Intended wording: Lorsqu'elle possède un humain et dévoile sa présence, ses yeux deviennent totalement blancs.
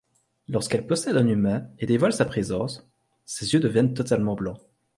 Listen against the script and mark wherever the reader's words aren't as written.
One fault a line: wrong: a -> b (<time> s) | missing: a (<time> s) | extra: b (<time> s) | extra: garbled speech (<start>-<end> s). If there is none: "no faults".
no faults